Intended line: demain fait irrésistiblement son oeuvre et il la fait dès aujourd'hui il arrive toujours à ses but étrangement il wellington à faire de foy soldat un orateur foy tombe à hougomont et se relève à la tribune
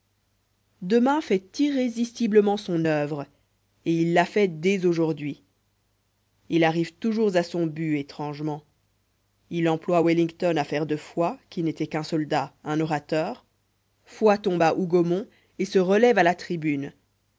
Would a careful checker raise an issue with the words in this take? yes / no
yes